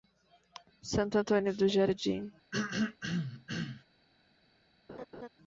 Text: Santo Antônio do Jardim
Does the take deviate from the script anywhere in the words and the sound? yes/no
yes